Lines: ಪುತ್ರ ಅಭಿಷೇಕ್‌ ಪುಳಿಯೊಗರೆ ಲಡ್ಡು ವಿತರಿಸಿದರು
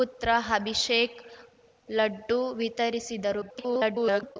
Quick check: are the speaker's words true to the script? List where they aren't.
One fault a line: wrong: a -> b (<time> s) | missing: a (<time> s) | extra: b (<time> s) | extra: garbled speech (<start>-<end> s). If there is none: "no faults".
missing: ಪುಳಿಯೊಗರೆ (1.2 s)
extra: garbled speech (3.4-4.4 s)